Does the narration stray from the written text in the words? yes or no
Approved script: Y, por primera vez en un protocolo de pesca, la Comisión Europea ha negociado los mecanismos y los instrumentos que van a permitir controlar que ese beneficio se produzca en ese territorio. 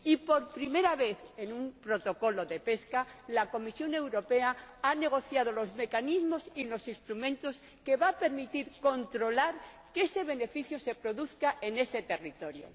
no